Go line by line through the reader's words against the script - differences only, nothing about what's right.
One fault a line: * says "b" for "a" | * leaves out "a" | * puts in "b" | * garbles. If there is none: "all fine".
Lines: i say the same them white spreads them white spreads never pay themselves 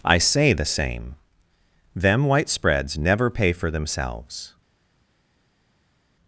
* leaves out "them white spreads"
* puts in "for"